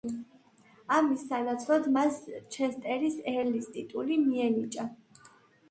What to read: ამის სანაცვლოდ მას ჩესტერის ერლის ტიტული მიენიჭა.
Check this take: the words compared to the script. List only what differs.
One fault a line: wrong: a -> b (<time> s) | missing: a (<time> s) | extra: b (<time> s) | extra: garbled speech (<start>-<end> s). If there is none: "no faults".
no faults